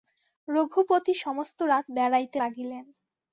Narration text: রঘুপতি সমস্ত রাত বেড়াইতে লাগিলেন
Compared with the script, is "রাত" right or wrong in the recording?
right